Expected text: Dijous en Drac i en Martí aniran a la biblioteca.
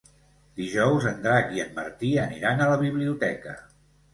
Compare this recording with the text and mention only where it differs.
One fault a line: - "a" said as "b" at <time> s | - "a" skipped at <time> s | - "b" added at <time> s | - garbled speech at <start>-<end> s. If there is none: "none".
none